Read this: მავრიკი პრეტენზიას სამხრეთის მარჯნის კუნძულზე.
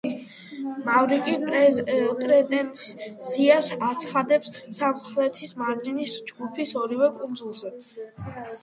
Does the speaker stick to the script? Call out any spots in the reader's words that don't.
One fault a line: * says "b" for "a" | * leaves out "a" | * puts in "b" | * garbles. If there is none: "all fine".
* puts in "აცხადებს"
* puts in "ჯგუფის ორივე"